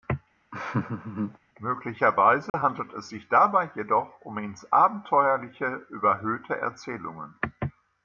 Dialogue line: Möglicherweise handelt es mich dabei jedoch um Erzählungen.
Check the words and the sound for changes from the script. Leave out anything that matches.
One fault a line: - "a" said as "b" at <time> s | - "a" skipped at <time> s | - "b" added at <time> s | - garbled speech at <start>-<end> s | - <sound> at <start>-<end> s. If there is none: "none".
- laugh at 0.5-1.4 s
- dropout at 2.5-2.5 s
- "mich" said as "sich" at 3.1 s
- "ins Abenteuerliche überhöhte" added at 4.4 s